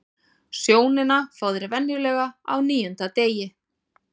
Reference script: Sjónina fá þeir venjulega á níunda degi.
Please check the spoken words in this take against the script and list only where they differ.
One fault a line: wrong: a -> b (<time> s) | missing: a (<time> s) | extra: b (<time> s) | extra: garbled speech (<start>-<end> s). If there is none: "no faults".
no faults